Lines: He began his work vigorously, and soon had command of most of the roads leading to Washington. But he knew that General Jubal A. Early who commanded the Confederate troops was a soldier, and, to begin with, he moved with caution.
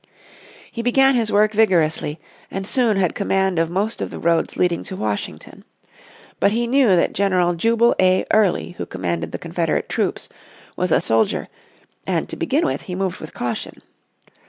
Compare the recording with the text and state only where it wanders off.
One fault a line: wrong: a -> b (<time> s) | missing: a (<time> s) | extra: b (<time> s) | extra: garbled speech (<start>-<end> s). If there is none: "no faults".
no faults